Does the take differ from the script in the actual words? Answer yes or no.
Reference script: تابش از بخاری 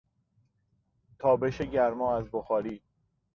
yes